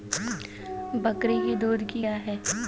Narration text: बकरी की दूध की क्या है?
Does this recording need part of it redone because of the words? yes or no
no